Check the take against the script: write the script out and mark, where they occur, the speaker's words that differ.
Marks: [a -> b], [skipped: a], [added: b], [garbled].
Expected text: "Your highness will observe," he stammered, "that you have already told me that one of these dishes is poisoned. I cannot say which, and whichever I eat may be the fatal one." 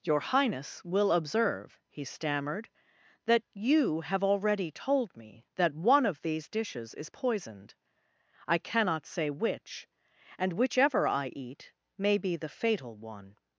"Your highness will observe," he stammered, "that you have already told me that one of these dishes is poisoned. I cannot say which, and whichever I eat may be the fatal one."